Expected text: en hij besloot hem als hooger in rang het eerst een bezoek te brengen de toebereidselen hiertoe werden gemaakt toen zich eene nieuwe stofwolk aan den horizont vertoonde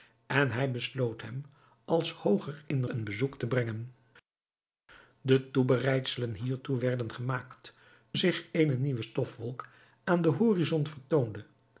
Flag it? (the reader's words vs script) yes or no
yes